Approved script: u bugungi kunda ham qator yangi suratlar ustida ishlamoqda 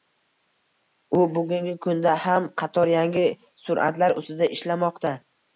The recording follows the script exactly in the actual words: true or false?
true